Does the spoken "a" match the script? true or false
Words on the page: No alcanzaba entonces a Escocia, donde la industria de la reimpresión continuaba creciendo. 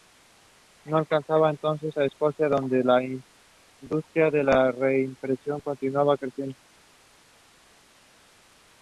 true